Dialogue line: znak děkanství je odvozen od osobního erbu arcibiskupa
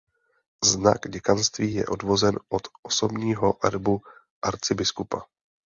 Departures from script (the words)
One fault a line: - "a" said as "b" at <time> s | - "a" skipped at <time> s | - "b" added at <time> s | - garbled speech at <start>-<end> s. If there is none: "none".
none